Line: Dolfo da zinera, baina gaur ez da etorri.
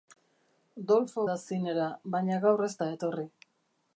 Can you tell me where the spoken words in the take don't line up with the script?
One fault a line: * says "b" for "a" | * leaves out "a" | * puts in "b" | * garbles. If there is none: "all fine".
all fine